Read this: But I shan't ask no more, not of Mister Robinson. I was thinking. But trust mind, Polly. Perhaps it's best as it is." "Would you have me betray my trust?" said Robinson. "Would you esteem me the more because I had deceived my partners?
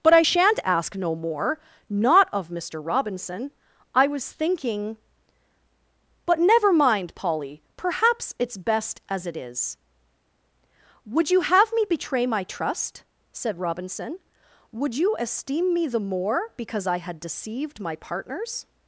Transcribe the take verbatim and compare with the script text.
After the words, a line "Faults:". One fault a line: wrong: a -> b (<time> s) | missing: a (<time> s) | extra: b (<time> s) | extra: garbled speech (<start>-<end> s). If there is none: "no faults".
But I shan't ask no more, not of Mister Robinson. I was thinking. But never mind, Polly. Perhaps it's best as it is." "Would you have me betray my trust?" said Robinson. "Would you esteem me the more because I had deceived my partners?
Faults:
wrong: trust -> never (6.4 s)